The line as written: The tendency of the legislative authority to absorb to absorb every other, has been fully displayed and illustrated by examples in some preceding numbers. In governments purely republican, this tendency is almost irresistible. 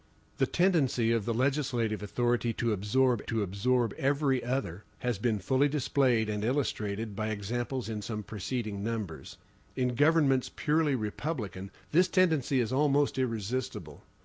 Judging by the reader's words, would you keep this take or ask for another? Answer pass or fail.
pass